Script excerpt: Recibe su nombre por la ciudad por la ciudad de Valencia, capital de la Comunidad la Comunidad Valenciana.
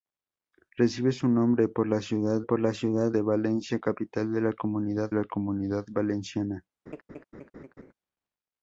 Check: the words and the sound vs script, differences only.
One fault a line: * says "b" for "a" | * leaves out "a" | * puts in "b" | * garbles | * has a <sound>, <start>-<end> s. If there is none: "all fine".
* has a laugh, 6.9-7.9 s